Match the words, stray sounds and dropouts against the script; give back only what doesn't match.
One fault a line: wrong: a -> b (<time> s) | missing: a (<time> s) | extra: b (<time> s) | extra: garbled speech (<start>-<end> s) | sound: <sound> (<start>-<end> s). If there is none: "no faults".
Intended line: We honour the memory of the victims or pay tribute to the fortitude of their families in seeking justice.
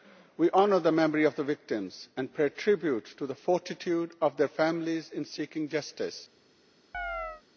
wrong: or -> and (2.2 s)
sound: chirp (6.9-7.4 s)